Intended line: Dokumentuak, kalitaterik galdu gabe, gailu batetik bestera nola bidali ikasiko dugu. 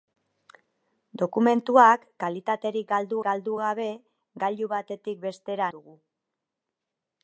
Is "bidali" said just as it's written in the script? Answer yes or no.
no